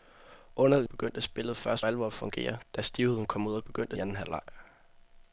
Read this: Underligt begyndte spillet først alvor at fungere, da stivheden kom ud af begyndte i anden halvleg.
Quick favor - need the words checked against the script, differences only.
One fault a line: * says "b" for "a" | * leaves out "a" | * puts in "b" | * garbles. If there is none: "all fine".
all fine